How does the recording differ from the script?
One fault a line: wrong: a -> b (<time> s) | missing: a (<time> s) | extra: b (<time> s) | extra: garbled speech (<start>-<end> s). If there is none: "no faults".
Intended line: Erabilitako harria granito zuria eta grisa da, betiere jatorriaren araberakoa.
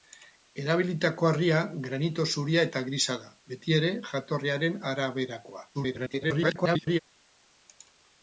extra: garbled speech (5.7-7.0 s)